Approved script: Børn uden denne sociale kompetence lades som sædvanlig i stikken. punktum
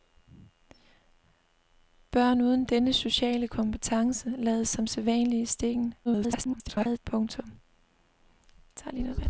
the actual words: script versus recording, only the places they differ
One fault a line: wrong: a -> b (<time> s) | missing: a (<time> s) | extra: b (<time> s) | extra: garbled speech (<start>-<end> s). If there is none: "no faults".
extra: garbled speech (6.1-7.0 s)